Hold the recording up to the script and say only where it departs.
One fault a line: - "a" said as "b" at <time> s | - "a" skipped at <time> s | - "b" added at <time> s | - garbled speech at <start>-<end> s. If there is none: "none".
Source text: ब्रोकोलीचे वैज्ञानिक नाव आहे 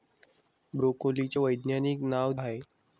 none